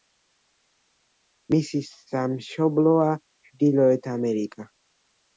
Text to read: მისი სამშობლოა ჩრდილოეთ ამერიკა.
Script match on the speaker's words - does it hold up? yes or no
yes